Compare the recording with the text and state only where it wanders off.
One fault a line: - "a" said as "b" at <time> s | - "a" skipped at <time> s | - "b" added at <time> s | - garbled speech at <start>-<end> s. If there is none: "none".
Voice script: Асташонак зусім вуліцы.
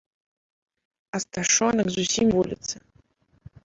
none